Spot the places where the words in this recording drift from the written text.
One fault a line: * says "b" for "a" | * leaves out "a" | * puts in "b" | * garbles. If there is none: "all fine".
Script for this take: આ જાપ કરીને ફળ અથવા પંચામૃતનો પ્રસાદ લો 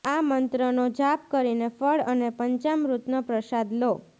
* puts in "મંત્રનો"
* says "અને" for "અથવા"